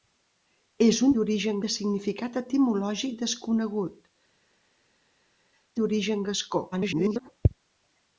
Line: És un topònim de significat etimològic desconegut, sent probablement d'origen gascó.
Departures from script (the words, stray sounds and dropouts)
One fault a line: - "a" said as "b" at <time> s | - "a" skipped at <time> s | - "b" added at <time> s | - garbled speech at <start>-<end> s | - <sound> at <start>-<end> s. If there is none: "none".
- "topònim" said as "d'origen" at 1.2 s
- "sent probablement" skipped at 4.0 s
- garbled speech at 6.7-7.3 s